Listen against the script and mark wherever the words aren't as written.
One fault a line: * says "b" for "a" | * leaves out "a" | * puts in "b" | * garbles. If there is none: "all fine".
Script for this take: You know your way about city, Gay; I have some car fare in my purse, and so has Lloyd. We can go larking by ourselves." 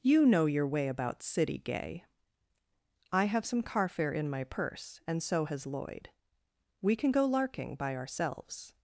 all fine